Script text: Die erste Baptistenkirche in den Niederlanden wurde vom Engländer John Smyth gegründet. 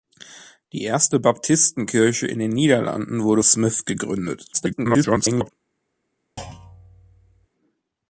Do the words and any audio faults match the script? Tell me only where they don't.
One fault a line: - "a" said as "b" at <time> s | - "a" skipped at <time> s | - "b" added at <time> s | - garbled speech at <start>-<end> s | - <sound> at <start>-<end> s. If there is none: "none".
- "vom Engländer John" skipped at 3.4 s
- garbled speech at 4.5-5.5 s
- thud at 6.4-7.5 s